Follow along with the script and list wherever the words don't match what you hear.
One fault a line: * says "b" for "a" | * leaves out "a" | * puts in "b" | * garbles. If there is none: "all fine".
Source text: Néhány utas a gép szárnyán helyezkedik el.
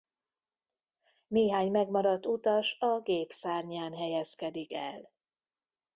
* puts in "megmaradt"